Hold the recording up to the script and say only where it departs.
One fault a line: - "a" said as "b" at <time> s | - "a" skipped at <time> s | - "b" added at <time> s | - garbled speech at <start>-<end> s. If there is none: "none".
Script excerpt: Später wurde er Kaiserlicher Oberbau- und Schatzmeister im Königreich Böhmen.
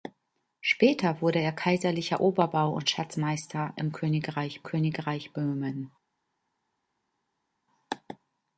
- "Königreich" added at 4.6 s